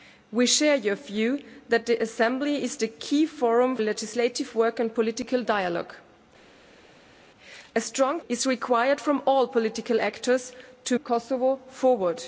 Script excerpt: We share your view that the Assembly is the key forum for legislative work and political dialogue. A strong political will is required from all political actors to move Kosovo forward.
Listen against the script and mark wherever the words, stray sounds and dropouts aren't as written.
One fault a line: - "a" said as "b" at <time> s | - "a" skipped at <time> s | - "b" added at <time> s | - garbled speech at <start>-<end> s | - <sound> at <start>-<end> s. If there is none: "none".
- "for" skipped at 3.8 s
- "political will" skipped at 8.2 s
- "move" skipped at 11.0 s